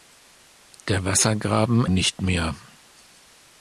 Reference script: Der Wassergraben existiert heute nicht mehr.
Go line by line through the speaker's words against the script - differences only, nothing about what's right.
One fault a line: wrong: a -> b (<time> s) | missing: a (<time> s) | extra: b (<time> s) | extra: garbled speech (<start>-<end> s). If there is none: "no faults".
missing: existiert heute (1.9 s)